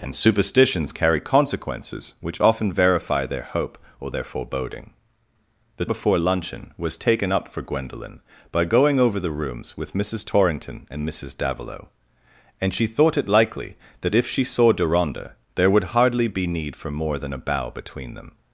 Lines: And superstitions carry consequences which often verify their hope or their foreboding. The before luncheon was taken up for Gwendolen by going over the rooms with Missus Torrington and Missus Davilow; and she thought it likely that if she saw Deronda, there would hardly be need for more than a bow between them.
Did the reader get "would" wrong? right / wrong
right